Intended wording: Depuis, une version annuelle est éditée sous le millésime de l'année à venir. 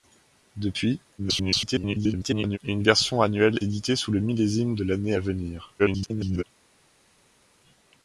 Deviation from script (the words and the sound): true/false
true